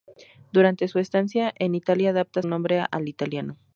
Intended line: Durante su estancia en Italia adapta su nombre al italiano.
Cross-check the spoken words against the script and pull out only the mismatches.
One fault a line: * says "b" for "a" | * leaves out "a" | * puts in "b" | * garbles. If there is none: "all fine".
* leaves out "su"